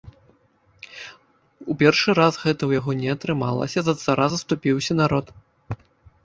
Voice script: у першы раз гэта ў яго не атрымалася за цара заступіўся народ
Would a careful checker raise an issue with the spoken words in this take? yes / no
no